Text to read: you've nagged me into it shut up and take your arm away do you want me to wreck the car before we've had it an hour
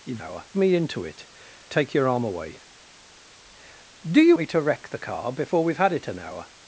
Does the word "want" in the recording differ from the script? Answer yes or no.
yes